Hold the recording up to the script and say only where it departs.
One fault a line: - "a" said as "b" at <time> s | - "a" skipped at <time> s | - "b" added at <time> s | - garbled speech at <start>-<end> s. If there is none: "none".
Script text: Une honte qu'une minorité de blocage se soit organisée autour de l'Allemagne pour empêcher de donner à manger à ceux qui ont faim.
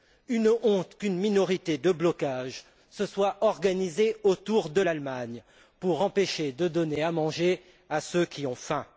none